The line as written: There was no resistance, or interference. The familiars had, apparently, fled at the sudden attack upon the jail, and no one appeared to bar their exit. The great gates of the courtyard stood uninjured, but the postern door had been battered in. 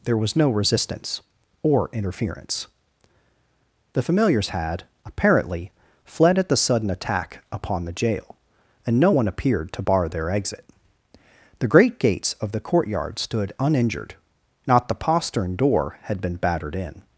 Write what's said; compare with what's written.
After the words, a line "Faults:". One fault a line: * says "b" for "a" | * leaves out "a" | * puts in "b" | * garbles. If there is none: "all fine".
There was no resistance, or interference. The familiars had, apparently, fled at the sudden attack upon the jail, and no one appeared to bar their exit. The great gates of the courtyard stood uninjured, not the postern door had been battered in.
Faults:
* says "not" for "but"